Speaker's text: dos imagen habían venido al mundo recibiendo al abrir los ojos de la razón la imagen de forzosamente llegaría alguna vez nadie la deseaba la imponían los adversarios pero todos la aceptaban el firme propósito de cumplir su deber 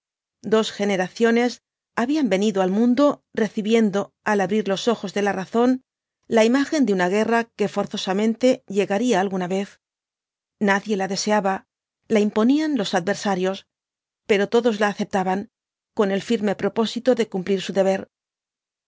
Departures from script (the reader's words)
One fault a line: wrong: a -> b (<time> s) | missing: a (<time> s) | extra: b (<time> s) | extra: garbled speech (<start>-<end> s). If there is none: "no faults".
wrong: imagen -> generaciones (0.7 s)
extra: una guerra que (6.9 s)
extra: con (15.9 s)